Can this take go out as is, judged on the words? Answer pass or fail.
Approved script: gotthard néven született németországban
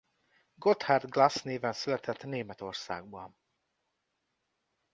fail